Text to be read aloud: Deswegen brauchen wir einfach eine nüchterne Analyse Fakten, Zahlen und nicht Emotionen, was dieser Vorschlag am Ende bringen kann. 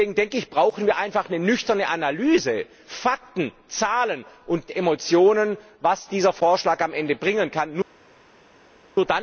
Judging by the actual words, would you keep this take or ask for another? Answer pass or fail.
fail